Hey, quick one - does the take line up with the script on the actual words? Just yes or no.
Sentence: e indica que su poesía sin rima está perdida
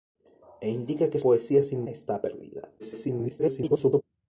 no